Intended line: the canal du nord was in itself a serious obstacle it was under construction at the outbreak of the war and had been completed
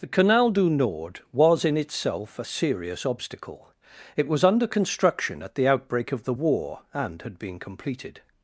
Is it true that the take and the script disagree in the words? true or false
false